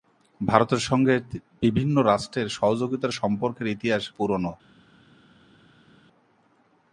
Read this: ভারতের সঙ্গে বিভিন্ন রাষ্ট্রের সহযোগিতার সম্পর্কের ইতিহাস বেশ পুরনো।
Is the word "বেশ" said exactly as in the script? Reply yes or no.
no